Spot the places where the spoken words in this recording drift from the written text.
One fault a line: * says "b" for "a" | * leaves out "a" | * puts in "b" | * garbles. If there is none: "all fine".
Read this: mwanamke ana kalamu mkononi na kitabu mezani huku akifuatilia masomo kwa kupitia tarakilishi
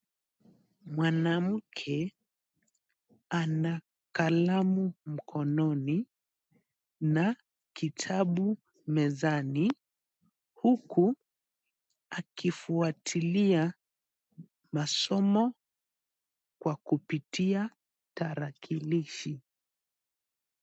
all fine